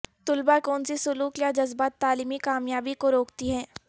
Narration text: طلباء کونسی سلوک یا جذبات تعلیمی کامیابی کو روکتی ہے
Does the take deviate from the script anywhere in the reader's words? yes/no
no